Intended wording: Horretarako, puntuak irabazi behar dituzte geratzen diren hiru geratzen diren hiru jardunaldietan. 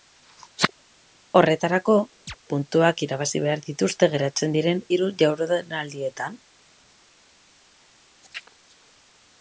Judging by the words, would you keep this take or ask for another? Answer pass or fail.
fail